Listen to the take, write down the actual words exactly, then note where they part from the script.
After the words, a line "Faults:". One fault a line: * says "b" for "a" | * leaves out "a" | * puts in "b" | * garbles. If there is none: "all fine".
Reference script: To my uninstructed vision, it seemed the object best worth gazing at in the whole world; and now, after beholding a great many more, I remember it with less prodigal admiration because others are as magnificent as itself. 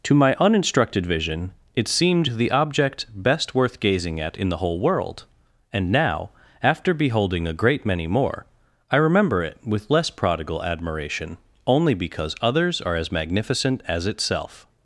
To my uninstructed vision, it seemed the object best worth gazing at in the whole world; and now, after beholding a great many more, I remember it with less prodigal admiration only because others are as magnificent as itself.
Faults:
* puts in "only"